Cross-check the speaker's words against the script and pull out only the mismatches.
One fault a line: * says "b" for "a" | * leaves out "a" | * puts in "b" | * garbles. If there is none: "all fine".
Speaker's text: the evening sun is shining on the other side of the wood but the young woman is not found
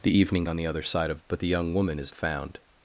* leaves out "sun is shining"
* leaves out "the wood"
* leaves out "not"